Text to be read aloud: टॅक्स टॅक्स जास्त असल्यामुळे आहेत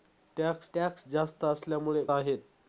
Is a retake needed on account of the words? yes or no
no